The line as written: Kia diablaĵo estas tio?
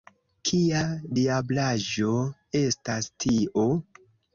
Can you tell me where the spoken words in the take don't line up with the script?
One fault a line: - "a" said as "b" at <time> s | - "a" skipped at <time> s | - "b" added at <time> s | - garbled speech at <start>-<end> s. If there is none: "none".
none